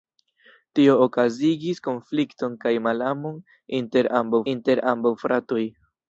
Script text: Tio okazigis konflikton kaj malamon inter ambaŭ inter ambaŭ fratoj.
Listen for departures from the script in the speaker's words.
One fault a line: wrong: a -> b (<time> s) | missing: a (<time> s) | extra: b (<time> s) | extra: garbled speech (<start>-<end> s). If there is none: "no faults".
no faults